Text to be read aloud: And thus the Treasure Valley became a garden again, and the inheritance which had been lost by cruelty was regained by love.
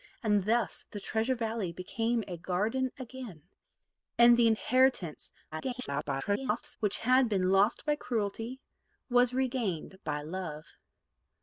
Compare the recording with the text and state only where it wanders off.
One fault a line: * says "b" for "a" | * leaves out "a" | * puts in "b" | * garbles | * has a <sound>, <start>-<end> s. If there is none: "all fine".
* garbles